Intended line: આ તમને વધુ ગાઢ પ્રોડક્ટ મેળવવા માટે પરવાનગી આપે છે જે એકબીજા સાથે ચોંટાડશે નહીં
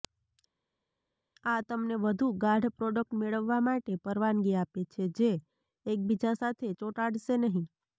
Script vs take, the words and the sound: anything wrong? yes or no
no